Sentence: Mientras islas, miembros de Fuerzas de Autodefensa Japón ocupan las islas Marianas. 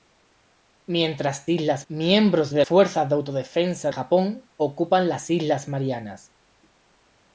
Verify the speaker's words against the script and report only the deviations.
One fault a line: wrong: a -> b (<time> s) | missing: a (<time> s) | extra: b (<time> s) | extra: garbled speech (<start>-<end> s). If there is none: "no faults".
no faults